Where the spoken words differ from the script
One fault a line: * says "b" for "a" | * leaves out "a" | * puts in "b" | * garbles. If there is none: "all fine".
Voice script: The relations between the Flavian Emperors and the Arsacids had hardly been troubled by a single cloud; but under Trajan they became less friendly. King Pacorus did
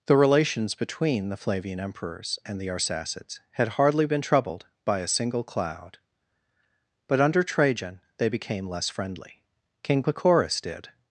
all fine